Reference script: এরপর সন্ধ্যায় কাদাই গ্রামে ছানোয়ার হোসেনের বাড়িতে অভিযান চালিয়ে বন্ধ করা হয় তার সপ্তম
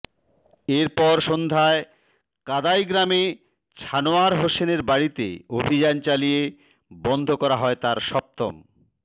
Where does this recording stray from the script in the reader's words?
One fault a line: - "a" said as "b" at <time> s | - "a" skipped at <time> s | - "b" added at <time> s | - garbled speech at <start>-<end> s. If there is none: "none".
none